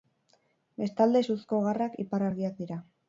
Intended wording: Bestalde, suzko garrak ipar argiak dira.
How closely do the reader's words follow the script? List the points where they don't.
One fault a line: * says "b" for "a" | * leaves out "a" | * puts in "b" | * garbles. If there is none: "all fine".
all fine